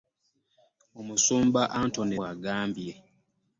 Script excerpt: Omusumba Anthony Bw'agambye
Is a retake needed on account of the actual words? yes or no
no